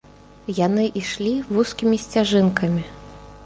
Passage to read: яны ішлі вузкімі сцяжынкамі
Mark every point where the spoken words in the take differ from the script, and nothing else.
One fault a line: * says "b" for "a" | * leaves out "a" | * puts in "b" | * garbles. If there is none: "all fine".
all fine